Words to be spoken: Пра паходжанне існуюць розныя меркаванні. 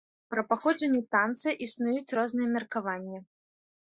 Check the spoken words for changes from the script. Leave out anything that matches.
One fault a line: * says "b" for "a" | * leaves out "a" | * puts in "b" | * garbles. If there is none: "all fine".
* puts in "танца"